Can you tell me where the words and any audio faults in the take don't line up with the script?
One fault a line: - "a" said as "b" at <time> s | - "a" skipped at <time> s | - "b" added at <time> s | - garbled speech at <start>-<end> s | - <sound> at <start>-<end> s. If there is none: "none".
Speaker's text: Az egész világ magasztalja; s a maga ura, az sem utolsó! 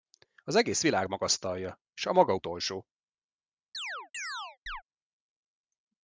- "ura az sem" skipped at 2.4 s
- chirp at 3.7-4.8 s